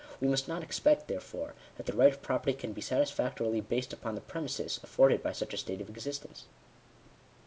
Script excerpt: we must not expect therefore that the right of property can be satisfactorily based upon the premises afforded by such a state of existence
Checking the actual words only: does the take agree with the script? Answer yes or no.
yes